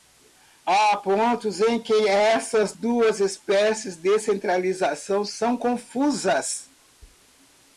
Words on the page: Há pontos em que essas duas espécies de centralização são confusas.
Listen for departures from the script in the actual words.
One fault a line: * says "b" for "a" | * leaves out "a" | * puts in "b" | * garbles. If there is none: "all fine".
all fine